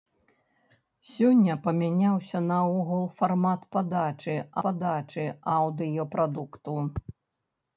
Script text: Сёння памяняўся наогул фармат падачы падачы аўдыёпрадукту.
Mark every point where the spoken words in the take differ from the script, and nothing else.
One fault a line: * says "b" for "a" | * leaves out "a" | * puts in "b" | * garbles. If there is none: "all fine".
all fine